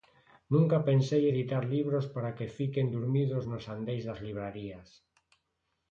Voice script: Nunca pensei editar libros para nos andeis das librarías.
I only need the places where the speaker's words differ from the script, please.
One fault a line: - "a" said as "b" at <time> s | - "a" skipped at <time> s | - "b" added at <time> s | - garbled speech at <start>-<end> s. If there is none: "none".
- "que fiquen durmidos" added at 2.4 s